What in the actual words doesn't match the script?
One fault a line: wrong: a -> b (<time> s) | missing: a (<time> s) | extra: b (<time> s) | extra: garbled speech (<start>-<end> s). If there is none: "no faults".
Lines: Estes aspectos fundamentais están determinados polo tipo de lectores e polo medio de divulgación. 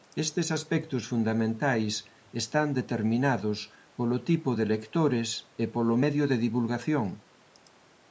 no faults